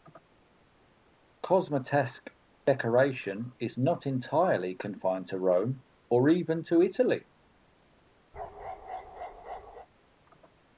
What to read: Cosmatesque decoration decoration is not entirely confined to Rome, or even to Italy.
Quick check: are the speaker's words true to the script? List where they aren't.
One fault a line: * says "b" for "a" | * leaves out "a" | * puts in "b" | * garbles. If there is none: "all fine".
* leaves out "decoration"